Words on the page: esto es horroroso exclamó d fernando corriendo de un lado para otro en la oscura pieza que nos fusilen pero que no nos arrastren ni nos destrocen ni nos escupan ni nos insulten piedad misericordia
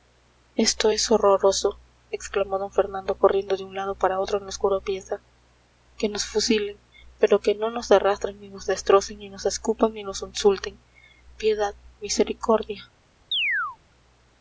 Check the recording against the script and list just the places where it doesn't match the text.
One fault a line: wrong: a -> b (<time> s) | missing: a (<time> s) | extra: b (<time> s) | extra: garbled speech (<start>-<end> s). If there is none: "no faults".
no faults